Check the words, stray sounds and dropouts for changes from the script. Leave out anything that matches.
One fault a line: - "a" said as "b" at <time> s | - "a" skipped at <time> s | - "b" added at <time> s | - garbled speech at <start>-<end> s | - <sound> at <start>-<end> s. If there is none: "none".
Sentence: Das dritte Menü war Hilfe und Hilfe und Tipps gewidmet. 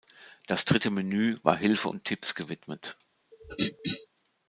- "Hilfe und" skipped at 2.0 s
- throat clearing at 3.3-4.1 s